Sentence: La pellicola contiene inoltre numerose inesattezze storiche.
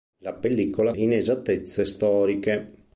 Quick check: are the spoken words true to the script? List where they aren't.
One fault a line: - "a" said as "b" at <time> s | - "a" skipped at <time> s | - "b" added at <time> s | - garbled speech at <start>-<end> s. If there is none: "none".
- "contiene inoltre numerose" skipped at 0.9 s